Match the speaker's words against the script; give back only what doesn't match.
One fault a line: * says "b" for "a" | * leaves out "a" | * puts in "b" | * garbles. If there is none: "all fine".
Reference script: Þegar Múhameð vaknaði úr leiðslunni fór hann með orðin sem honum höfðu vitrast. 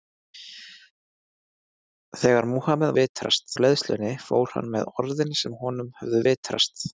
* says "vitrast" for "vaknaði"